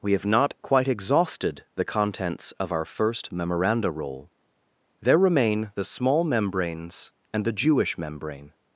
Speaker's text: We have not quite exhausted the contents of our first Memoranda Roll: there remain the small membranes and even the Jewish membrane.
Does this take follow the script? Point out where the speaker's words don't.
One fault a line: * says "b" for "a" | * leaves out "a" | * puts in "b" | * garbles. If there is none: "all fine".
* leaves out "even"